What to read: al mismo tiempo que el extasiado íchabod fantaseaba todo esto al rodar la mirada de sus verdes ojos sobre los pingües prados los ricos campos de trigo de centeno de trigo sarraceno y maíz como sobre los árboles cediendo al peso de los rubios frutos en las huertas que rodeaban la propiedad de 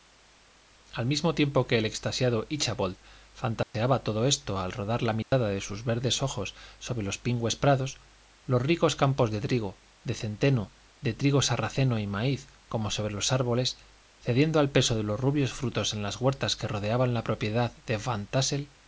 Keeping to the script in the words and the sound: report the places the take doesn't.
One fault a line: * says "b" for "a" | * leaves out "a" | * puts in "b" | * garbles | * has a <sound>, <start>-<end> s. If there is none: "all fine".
* has a dropout, 3.6-3.7 s
* has a dropout, 5.2-5.3 s